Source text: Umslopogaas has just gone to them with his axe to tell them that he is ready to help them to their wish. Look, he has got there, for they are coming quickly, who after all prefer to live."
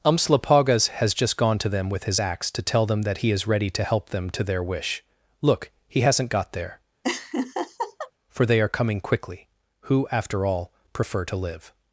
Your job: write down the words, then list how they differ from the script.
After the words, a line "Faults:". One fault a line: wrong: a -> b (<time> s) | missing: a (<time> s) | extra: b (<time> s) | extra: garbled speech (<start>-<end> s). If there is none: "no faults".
Umslopogaas has just gone to them with his axe to tell them that he is ready to help them to their wish. Look, he hasn't got there, for they are coming quickly, who after all prefer to live."
Faults:
wrong: has -> hasn't (6.0 s)